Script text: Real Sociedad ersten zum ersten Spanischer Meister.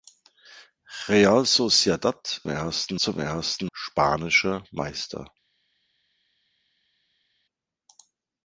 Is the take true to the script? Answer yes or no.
yes